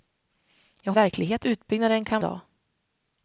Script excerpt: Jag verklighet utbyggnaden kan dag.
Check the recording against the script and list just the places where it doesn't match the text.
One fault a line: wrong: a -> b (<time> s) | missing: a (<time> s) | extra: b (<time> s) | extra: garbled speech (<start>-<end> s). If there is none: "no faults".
no faults